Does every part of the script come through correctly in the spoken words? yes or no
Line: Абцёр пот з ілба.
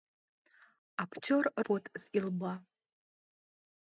yes